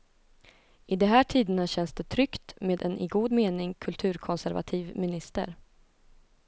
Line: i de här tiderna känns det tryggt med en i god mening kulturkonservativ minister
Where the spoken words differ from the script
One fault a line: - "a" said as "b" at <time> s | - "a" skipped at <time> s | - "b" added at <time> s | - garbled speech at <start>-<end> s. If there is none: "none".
none